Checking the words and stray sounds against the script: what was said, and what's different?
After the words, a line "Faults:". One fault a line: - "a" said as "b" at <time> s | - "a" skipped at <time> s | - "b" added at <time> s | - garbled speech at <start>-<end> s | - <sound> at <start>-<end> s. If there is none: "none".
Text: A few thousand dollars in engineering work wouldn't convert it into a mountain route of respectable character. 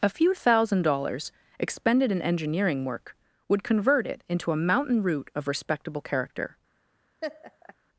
A few thousand dollars expended in engineering work would convert it into a mountain route of respectable character.
Faults:
- "expended" added at 1.6 s
- "wouldn't" said as "would" at 3.5 s
- laugh at 7.2-7.7 s